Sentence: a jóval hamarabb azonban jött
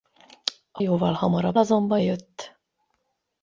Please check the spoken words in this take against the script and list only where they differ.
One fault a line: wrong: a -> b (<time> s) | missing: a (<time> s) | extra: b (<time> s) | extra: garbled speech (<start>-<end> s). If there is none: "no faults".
no faults